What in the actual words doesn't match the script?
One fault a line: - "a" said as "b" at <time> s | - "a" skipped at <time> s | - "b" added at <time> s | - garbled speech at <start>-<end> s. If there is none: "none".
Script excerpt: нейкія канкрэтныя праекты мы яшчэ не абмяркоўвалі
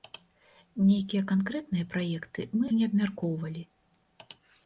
- "яшчэ" skipped at 2.6 s